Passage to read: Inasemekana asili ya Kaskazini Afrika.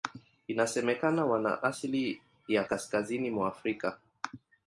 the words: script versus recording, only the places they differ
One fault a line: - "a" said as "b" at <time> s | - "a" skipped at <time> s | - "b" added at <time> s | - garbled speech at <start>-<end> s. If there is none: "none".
- "wana" added at 1.2 s
- "mwa" added at 3.3 s